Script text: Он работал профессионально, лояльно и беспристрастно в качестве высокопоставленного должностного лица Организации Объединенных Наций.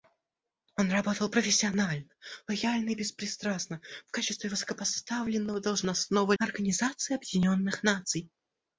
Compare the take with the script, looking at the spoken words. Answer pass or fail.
fail